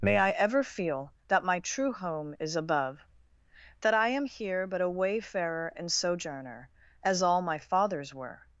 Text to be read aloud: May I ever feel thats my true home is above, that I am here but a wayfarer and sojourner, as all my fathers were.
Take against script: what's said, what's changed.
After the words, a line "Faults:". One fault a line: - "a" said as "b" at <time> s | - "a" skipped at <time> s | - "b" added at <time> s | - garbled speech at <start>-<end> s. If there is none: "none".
May I ever feel that my true home is above, that I am here but a wayfarer and sojourner, as all my fathers were.
Faults:
- "thats" said as "that" at 1.3 s